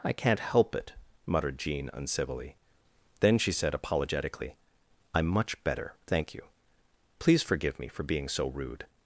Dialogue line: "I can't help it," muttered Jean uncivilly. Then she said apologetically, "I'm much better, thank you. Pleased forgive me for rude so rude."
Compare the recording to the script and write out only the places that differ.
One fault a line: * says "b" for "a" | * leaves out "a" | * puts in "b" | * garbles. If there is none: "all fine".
* says "Please" for "Pleased"
* says "being" for "rude"